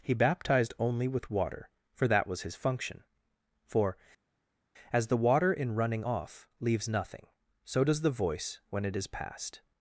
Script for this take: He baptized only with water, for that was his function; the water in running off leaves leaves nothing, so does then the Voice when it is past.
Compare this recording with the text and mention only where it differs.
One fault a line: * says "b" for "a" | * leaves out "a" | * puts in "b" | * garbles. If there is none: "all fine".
* puts in "for as"
* leaves out "leaves"
* leaves out "then"